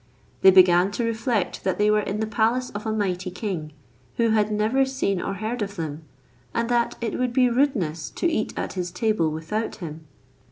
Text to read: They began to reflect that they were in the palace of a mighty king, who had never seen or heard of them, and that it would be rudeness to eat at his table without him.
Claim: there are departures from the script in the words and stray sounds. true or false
false